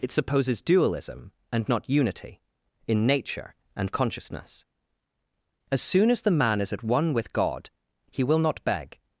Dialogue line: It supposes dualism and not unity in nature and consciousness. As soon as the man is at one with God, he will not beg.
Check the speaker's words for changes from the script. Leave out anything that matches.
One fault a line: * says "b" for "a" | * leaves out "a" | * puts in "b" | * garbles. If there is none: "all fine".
all fine